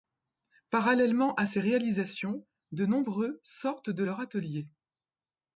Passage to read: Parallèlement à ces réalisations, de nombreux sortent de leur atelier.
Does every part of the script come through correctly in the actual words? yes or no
yes